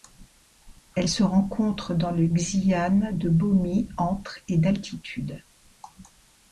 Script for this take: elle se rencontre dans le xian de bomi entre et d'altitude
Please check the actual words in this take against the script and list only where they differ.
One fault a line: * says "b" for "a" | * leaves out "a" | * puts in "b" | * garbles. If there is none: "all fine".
all fine